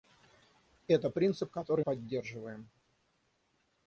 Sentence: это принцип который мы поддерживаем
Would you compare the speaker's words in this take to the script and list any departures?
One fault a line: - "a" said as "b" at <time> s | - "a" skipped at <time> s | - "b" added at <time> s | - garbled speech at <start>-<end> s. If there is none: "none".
- "мы" skipped at 1.8 s